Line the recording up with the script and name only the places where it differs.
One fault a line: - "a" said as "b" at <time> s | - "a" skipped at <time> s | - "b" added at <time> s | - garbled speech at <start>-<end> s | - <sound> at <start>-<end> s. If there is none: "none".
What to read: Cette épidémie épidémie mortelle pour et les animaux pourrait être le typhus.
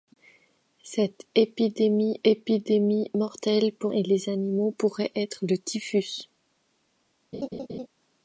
- laugh at 7.3-7.9 s